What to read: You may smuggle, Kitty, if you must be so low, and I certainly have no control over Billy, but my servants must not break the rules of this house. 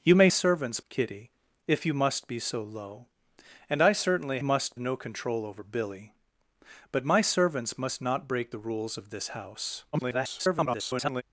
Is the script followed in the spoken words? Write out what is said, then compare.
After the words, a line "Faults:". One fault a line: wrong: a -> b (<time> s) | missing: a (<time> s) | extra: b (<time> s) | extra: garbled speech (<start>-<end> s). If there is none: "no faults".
You may servants, Kitty, if you must be so low, and I certainly must no control over Billy, but my servants must not break the rules of this house. [garbled]
Faults:
wrong: smuggle -> servants (0.3 s)
wrong: have -> must (4.4 s)
extra: garbled speech (9.9-11.2 s)